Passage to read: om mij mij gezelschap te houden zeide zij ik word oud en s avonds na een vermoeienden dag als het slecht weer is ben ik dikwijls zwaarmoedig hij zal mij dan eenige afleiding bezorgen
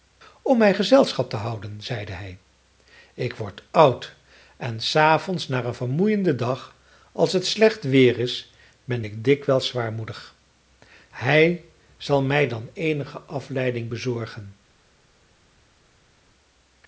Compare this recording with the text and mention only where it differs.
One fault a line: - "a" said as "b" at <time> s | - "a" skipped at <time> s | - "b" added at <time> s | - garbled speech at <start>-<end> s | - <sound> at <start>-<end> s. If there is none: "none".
- "mij" skipped at 0.7 s
- "zij" said as "hij" at 2.1 s